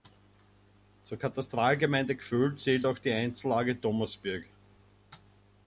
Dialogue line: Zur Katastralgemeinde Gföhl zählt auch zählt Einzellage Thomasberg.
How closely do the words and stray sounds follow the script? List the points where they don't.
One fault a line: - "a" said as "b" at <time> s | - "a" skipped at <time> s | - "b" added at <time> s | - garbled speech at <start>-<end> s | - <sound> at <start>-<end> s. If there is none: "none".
- "zählt" said as "die" at 3.0 s